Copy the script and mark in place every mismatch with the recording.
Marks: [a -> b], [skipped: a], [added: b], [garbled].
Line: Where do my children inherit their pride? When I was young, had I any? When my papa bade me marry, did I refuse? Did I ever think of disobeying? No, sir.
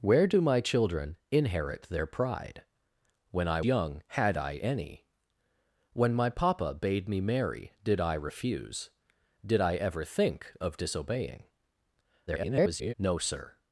Where do my children inherit their pride? When I [skipped: was] young, had I any? When my papa bade me marry, did I refuse? Did I ever think of disobeying? [garbled] No, sir.